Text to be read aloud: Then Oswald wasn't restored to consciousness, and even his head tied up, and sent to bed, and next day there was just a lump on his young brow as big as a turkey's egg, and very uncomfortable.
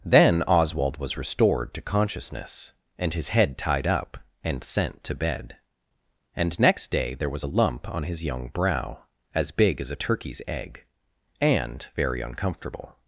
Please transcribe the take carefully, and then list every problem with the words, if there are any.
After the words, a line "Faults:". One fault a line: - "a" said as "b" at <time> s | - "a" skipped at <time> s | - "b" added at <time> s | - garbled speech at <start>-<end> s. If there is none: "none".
Then Oswald was restored to consciousness, and his head tied up, and sent to bed, and next day there was a lump on his young brow as big as a turkey's egg, and very uncomfortable.
Faults:
- "wasn't" said as "was" at 1.0 s
- "even" skipped at 3.1 s
- "just" skipped at 7.4 s